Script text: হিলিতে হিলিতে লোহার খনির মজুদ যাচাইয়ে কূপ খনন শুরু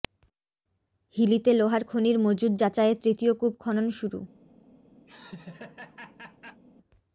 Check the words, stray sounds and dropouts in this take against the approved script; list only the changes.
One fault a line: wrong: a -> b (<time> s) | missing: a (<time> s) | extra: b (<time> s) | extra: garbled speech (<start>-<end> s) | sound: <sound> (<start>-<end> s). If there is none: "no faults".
missing: হিলিতে (1.5 s)
extra: তৃতীয় (3.0 s)
sound: laugh (5.1-6.6 s)